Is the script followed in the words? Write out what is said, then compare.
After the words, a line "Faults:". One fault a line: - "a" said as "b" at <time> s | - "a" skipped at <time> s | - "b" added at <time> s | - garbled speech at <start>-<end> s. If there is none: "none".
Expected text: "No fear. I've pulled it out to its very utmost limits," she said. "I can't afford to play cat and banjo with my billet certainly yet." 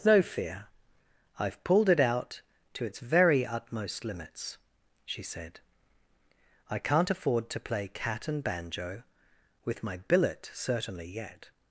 "No fear. I've pulled it out to its very utmost limits," she said. "I can't afford to play cat and banjo with my billet certainly yet."
Faults:
none